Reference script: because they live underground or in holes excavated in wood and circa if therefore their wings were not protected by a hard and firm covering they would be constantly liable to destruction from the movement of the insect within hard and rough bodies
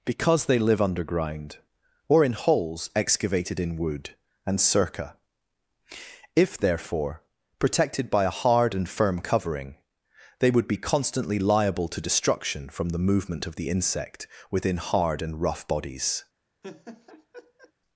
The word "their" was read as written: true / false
false